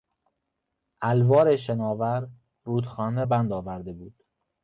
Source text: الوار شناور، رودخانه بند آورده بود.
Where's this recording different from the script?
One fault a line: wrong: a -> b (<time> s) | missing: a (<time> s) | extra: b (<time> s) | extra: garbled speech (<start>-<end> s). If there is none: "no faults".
no faults